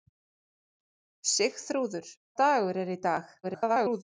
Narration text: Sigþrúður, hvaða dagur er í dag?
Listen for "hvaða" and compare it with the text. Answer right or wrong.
wrong